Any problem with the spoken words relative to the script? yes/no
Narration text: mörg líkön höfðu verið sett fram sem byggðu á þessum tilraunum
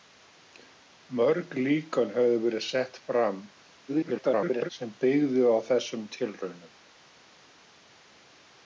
yes